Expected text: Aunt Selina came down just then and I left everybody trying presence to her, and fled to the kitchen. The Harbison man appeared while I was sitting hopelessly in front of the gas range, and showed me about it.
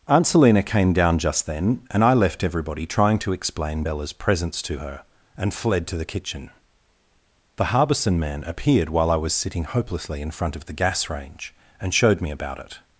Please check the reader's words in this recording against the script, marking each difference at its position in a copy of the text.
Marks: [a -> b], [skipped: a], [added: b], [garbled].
Aunt Selina came down just then and I left everybody trying [added: to explain Bella's] presence to her, and fled to the kitchen. The Harbison man appeared while I was sitting hopelessly in front of the gas range, and showed me about it.